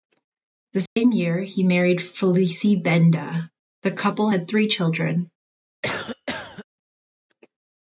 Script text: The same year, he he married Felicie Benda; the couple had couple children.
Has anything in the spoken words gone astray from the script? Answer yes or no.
yes